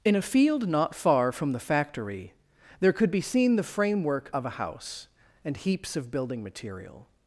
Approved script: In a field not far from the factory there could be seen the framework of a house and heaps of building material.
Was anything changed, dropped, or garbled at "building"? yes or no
no